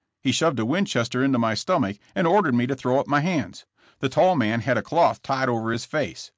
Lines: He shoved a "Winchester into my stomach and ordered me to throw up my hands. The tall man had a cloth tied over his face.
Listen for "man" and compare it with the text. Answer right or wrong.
right